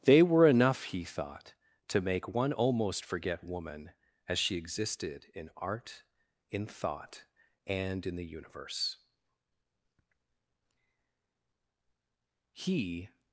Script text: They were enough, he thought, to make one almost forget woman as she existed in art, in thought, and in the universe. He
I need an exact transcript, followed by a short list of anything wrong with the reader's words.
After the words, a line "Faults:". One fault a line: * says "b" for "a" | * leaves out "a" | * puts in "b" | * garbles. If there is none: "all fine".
They were enough, he thought, to make one almost forget woman as she existed in art, in thought, and in the universe. He
Faults:
all fine